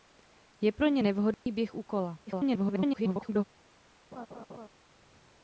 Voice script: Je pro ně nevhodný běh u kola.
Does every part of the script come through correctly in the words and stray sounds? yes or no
no